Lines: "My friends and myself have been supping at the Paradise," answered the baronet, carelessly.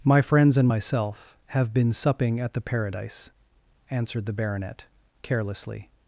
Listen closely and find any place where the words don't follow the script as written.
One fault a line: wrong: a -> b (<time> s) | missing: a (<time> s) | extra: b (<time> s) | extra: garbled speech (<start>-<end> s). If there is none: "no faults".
no faults